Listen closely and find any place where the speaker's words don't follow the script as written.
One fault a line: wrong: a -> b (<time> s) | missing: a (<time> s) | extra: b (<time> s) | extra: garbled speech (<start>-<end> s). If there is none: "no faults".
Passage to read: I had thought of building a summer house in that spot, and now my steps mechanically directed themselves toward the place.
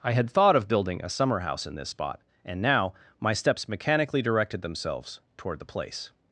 wrong: that -> this (1.8 s)